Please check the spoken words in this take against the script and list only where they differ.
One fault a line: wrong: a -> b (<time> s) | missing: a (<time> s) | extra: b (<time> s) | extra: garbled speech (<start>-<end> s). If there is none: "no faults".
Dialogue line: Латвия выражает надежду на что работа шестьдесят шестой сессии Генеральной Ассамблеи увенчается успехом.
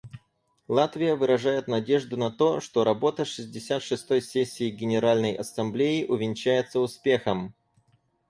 extra: то (2.3 s)